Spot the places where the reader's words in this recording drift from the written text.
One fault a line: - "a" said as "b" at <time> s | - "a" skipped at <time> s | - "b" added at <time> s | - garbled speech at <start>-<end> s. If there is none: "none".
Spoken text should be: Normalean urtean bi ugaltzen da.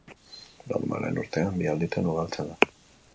- "alditan" added at 1.7 s